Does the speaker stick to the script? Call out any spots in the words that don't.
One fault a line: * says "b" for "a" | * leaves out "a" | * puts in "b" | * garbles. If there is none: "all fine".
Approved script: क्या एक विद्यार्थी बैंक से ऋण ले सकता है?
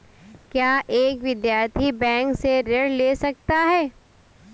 all fine